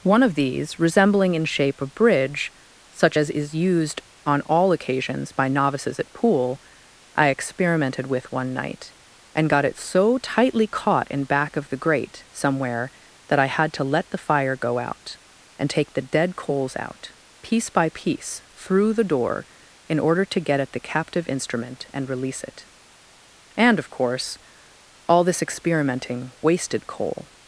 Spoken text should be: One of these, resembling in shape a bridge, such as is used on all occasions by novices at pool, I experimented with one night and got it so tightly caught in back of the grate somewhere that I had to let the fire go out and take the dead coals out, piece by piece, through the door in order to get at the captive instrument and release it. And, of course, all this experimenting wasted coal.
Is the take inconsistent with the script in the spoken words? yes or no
no